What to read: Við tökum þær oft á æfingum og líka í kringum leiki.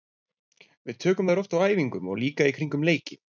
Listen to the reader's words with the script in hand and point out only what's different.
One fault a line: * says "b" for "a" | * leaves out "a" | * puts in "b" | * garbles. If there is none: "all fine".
all fine